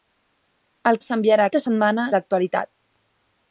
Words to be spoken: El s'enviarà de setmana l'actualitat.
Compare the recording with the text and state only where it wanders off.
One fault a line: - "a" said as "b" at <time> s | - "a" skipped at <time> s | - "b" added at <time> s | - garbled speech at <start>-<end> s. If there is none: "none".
none